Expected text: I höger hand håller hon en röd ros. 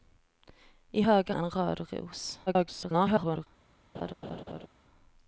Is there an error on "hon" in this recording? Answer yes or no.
yes